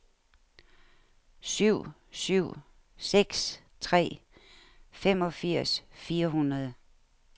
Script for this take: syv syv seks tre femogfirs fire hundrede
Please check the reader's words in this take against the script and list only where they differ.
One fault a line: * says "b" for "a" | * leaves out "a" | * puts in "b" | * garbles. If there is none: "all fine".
all fine